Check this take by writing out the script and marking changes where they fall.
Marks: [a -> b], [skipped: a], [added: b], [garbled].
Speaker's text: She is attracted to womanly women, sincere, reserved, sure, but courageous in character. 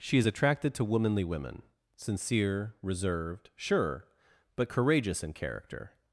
She is attracted to womanly women, sincere, reserved, sure, but courageous in character.